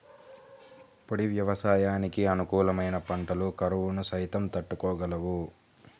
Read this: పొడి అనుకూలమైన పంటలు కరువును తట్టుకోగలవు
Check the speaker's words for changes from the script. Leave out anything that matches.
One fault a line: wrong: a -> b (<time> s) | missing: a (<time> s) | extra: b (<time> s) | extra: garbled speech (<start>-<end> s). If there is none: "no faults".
extra: వ్యవసాయానికి (1.3 s)
extra: సైతం (4.1 s)